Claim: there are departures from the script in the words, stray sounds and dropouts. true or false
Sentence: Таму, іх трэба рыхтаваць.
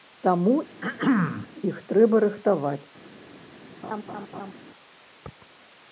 true